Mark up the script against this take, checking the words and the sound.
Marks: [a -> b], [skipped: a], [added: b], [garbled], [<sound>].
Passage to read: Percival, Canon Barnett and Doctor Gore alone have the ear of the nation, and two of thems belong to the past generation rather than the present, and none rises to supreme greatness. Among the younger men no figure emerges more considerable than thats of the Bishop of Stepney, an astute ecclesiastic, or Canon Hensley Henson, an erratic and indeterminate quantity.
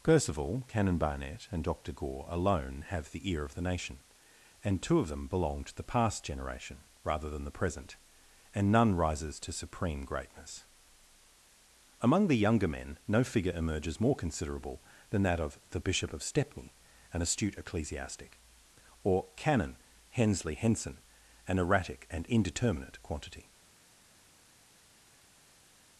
Percival, Canon Barnett and Doctor Gore alone have the ear of the nation, and two of [thems -> them] belong to the past generation rather than the present, and none rises to supreme greatness. Among the younger men no figure emerges more considerable than [thats -> that] of the Bishop of Stepney, an astute ecclesiastic, or Canon Hensley Henson, an erratic and indeterminate quantity.